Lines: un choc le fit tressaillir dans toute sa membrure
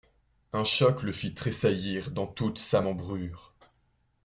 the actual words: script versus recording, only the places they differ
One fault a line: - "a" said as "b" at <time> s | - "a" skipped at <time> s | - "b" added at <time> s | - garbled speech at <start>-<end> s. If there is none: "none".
none